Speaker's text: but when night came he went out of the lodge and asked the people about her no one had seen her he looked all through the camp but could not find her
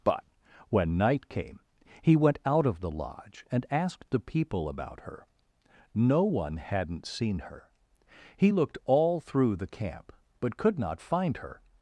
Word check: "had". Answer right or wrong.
wrong